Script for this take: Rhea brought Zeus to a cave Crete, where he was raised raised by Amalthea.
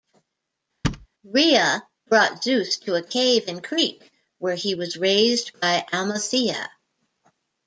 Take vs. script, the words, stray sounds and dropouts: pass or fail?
fail